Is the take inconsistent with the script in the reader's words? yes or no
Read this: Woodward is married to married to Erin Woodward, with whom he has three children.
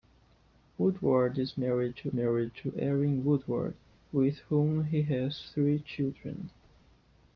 no